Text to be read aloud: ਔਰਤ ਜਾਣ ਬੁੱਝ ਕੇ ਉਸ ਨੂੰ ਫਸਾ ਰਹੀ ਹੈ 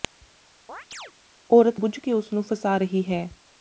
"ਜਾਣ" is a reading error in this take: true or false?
true